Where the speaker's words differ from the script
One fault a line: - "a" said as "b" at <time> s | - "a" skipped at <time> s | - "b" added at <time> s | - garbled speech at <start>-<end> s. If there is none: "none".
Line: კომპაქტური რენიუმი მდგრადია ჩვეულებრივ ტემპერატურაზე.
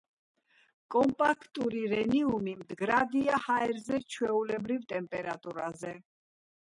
- "ჰაერზე" added at 3.4 s